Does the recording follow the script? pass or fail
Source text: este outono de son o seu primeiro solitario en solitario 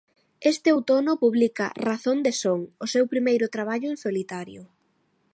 fail